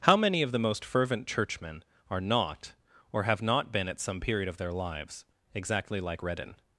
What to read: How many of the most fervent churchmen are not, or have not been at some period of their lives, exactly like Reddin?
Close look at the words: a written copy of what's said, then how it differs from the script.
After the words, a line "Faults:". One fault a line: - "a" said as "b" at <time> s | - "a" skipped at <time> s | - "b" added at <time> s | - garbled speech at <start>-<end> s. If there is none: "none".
How many of the most fervent churchmen are not, or have not been at some period of their lives, exactly like Reddin?
Faults:
none